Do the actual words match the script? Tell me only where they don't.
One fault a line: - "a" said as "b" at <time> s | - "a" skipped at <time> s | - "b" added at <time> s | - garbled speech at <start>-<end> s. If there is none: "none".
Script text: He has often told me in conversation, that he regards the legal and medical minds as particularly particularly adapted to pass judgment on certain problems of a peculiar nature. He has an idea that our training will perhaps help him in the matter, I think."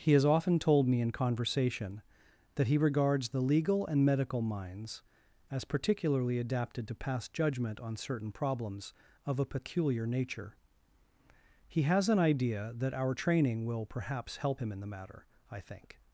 - "particularly" skipped at 6.4 s